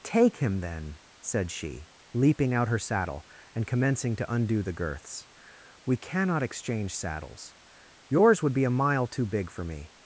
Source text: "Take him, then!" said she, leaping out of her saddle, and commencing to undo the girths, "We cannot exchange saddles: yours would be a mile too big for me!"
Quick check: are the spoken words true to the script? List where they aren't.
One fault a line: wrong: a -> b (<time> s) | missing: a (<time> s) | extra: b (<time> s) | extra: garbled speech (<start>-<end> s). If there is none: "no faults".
missing: of (2.7 s)